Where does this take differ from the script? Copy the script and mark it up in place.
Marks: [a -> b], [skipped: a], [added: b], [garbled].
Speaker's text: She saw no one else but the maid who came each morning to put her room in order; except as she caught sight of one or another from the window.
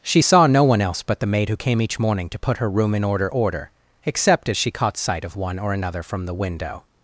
She saw no one else but the maid who came each morning to put her room in order; [added: order] except as she caught sight of one or another from the window.